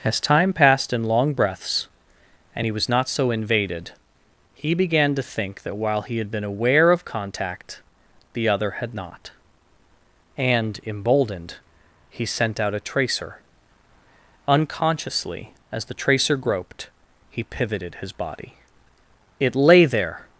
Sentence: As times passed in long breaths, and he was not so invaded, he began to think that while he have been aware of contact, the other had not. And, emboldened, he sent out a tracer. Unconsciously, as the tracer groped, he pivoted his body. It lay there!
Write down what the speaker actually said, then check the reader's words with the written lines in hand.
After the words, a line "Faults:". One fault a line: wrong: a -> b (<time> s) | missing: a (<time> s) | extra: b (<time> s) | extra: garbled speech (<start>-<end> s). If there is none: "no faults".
As time passed in long breaths, and he was not so invaded, he began to think that while he had been aware of contact, the other had not. And, emboldened, he sent out a tracer. Unconsciously, as the tracer groped, he pivoted his body. It lay there!
Faults:
wrong: times -> time (0.2 s)
wrong: have -> had (6.2 s)